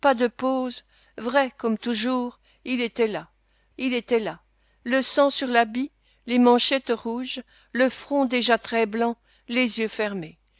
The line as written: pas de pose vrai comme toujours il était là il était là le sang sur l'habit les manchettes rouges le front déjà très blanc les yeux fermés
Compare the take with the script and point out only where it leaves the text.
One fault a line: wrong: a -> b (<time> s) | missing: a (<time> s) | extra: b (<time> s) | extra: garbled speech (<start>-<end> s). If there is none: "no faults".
no faults